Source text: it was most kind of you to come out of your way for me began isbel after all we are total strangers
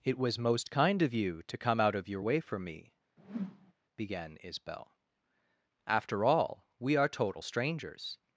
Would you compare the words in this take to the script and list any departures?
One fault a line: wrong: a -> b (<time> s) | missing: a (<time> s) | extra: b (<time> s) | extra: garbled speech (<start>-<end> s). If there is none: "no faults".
no faults